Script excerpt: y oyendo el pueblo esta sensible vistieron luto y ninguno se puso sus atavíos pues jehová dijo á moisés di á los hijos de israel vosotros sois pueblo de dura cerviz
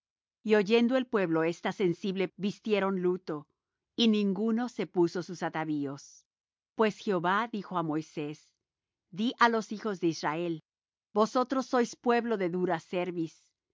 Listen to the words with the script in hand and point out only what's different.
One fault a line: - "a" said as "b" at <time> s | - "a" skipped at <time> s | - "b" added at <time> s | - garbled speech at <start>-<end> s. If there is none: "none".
none